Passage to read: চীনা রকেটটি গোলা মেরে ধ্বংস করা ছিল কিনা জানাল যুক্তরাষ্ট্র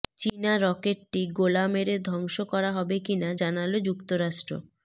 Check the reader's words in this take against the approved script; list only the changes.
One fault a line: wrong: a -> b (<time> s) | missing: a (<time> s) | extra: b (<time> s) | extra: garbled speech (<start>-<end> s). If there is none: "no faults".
wrong: ছিল -> হবে (2.8 s)